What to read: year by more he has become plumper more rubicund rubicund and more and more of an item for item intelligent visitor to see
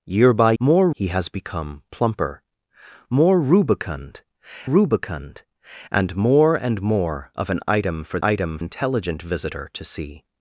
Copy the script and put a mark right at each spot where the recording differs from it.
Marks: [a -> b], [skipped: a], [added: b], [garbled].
year by more he has become plumper more rubicund rubicund and more and more of an item for item intelligent visitor to see